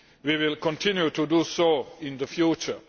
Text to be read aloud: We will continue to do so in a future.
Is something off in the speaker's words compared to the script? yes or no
yes